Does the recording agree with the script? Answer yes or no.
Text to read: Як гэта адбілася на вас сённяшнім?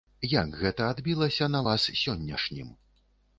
yes